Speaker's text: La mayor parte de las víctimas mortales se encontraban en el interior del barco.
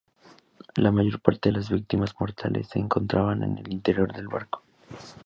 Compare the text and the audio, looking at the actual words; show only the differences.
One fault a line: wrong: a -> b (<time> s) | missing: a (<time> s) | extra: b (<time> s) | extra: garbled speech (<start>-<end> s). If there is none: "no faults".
no faults